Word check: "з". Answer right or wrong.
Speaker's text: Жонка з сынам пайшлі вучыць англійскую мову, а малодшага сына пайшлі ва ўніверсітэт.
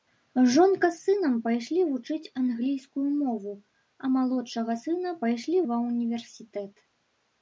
right